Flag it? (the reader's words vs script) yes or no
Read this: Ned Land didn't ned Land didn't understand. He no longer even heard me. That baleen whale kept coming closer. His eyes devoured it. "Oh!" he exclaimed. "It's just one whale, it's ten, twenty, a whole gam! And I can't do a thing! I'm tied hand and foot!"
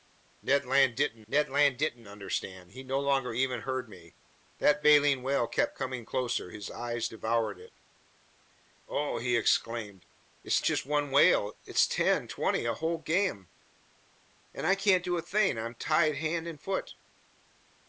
no